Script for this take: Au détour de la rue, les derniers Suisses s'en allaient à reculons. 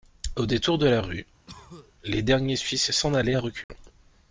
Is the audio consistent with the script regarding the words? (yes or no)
yes